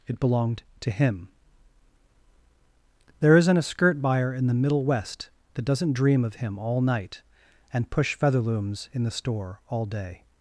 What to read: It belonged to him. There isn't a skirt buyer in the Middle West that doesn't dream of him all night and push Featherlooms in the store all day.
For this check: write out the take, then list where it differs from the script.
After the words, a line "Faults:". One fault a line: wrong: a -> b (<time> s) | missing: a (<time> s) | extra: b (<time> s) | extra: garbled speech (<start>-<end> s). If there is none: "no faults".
It belonged to him. There isn't a skirt buyer in the Middle West that doesn't dream of him all night and push Featherlooms in the store all day.
Faults:
no faults